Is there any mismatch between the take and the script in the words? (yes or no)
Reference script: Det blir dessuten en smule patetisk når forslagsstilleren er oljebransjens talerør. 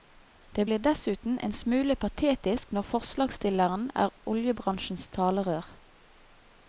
no